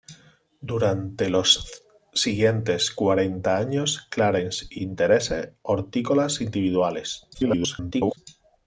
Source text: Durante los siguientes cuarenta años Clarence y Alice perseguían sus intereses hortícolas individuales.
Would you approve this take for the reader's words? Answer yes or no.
no